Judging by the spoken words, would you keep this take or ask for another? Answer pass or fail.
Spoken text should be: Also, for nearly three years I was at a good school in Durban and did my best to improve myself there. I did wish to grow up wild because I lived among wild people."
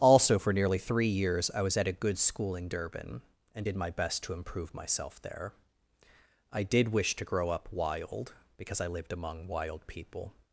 pass